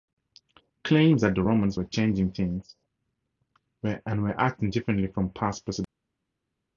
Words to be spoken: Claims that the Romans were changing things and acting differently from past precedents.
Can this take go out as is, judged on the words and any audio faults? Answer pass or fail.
fail